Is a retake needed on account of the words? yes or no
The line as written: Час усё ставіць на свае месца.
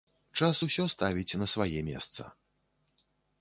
no